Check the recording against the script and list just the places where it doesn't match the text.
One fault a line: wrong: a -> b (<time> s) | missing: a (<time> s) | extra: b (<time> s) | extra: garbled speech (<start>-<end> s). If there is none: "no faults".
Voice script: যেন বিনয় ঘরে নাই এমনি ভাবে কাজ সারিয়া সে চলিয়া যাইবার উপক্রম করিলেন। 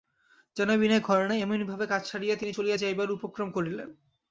wrong: সে -> তিনি (2.4 s)